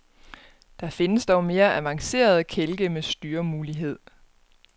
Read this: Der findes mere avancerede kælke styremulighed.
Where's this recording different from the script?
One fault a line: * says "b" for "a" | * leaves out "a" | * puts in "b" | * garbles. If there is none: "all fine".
* puts in "dog"
* puts in "med"